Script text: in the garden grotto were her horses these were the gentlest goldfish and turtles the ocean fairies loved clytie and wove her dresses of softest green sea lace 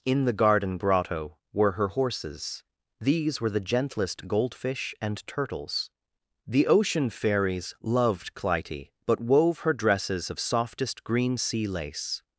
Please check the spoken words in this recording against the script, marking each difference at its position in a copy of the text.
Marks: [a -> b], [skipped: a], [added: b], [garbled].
in the garden grotto were her horses these were the gentlest goldfish and turtles the ocean fairies loved clytie [and -> but] wove her dresses of softest green sea lace